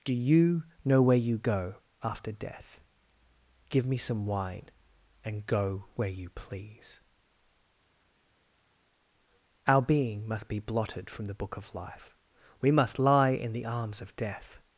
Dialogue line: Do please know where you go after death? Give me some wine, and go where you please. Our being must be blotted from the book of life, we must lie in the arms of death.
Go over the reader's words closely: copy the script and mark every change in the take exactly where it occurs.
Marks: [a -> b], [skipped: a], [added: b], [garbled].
Do [please -> you] know where you go after death? Give me some wine, and go where you please. Our being must be blotted from the book of life, we must lie in the arms of death.